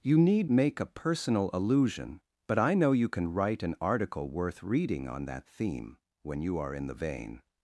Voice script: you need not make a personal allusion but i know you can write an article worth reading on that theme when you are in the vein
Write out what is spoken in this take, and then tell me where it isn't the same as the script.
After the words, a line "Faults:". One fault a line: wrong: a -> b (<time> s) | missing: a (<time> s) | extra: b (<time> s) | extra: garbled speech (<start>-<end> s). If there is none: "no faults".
you need make a personal allusion but i know you can write an article worth reading on that theme when you are in the vein
Faults:
missing: not (0.5 s)